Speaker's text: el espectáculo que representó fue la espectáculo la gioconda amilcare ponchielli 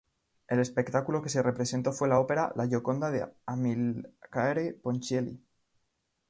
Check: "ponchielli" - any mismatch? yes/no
no